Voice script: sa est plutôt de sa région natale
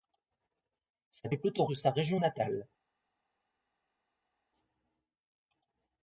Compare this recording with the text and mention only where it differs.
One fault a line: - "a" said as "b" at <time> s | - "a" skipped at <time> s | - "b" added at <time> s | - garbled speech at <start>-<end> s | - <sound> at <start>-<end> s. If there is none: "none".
none